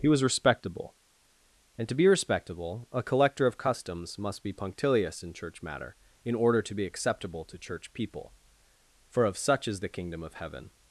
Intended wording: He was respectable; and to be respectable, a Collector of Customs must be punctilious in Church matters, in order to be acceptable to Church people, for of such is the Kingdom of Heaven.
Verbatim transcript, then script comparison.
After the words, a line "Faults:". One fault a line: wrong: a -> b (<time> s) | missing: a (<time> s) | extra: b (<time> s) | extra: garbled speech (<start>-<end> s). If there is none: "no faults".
He was respectable; and to be respectable, a Collector of Customs must be punctilious in Church matter, in order to be acceptable to Church people, for of such is the Kingdom of Heaven.
Faults:
wrong: matters -> matter (5.6 s)